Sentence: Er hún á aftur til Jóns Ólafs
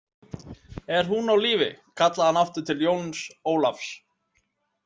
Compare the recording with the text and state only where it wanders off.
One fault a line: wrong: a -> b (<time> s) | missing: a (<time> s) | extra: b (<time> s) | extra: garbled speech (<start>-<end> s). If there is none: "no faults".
extra: lífi kallaði hann (1.4 s)